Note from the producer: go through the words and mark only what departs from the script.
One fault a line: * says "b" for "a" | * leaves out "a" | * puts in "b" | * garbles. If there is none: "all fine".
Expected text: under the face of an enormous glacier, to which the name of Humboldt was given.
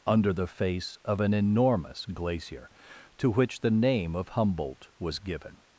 all fine